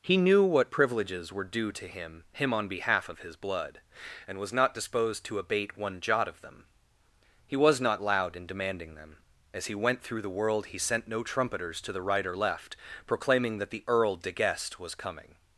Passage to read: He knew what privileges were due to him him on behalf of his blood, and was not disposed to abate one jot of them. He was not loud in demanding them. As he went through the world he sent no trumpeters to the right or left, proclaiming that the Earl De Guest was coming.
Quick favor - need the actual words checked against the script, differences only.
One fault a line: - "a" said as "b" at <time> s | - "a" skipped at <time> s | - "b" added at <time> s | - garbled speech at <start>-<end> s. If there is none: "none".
none